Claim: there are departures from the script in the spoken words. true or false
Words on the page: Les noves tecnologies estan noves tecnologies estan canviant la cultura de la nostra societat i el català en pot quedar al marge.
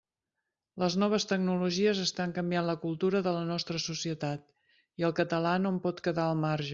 true